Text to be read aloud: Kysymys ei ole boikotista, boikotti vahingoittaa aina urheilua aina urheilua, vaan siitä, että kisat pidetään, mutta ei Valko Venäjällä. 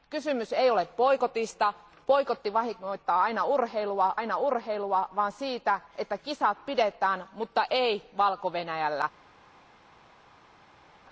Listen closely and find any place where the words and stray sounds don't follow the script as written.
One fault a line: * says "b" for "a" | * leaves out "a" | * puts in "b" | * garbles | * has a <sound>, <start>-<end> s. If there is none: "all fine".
all fine